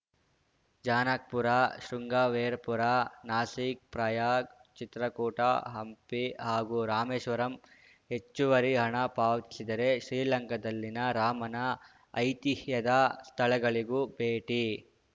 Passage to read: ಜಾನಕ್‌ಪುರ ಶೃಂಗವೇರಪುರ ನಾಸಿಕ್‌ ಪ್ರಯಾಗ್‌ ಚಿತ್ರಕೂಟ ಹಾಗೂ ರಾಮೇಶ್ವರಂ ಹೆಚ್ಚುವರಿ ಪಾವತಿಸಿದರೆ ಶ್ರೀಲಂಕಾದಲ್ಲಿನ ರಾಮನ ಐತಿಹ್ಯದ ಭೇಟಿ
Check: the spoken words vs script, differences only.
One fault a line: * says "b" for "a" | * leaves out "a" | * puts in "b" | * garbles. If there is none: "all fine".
* puts in "ಹಂಪಿ"
* puts in "ಹಣ"
* puts in "ಸ್ಥಳಗಳಿಗೂ"